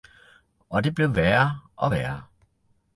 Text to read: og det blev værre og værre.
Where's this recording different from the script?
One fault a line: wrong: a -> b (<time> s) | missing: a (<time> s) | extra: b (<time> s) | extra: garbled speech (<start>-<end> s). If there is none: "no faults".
no faults